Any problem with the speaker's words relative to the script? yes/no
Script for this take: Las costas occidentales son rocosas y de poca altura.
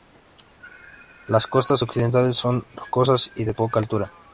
no